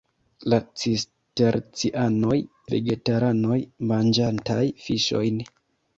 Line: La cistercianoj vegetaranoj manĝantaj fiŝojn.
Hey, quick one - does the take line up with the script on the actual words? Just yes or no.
yes